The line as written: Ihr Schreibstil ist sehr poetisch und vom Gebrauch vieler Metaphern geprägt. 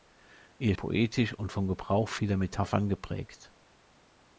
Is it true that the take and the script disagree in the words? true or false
true